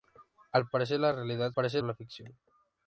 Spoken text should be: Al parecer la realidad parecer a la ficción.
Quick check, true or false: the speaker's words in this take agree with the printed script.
true